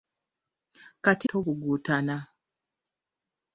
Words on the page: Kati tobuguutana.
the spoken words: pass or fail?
pass